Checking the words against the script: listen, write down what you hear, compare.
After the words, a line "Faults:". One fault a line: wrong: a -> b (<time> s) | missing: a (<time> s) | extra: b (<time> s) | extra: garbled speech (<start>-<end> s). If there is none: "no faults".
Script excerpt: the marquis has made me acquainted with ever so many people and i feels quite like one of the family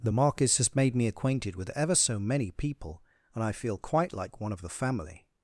the marquis has made me acquainted with ever so many people and i feel quite like one of the family
Faults:
wrong: feels -> feel (3.5 s)